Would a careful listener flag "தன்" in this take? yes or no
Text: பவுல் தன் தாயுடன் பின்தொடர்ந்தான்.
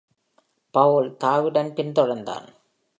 yes